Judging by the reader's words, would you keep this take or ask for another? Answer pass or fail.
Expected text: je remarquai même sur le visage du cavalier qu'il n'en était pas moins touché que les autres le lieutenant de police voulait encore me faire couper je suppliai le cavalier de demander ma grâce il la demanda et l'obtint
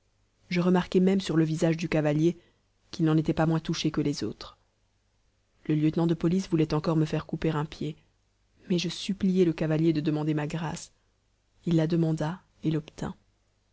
fail